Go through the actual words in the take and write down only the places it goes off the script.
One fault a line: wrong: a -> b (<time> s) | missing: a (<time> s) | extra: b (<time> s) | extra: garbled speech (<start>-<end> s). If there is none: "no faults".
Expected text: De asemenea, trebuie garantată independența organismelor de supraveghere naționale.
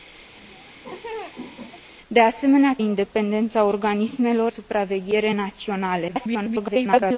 missing: trebuie garantată (2.7 s)
missing: de (4.5 s)
extra: garbled speech (6.1-7.2 s)